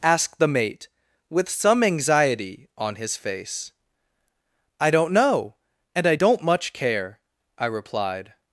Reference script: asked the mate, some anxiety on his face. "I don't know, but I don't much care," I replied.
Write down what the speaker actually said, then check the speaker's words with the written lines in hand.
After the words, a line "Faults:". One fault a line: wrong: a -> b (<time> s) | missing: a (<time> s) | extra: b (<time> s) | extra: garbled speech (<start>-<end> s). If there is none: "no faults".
asked the mate, with some anxiety on his face. "I don't know, and I don't much care," I replied.
Faults:
extra: with (1.3 s)
wrong: but -> and (5.9 s)